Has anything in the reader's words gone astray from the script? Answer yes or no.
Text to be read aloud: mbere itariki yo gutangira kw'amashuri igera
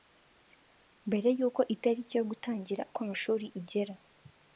yes